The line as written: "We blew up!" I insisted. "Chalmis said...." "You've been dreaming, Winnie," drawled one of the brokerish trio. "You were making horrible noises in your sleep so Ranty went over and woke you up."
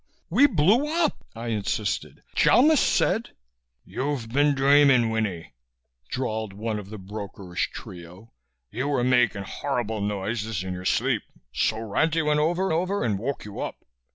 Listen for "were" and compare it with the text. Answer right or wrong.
right